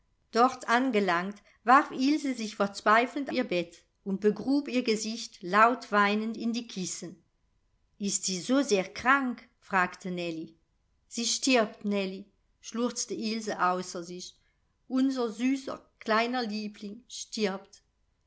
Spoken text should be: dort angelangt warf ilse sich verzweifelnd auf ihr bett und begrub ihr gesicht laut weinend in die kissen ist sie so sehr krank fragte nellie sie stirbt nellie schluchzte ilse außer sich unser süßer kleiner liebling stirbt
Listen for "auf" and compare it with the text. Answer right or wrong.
wrong